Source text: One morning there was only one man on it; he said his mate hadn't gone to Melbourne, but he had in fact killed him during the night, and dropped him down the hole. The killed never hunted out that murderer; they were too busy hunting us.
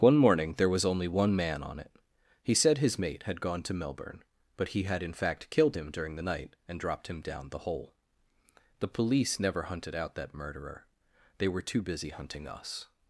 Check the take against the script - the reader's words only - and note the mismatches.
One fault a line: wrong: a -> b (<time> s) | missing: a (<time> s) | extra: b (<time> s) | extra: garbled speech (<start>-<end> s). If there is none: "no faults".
wrong: hadn't -> had (3.2 s)
wrong: killed -> police (8.9 s)